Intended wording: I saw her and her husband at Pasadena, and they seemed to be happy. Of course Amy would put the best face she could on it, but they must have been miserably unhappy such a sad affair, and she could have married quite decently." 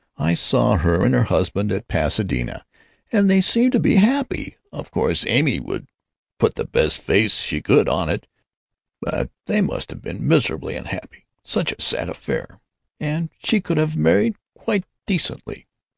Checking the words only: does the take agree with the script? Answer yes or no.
yes